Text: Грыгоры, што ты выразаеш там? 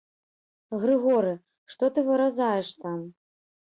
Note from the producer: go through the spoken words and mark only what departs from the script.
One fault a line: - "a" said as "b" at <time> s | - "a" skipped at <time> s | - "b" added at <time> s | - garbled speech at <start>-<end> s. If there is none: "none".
none